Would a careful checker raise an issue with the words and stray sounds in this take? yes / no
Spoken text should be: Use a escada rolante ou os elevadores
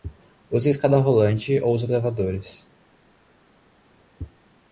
no